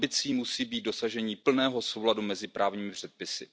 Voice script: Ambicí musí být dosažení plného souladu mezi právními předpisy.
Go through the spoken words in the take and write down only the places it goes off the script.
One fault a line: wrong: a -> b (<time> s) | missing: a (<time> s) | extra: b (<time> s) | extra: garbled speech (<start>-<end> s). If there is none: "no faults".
no faults